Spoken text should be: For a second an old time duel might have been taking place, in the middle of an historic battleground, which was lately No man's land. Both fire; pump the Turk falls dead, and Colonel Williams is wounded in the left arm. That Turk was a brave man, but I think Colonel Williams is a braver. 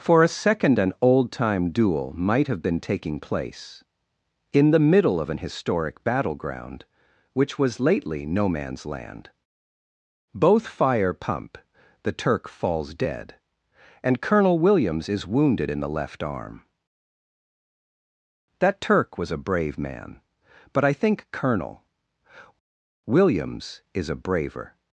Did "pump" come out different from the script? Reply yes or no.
no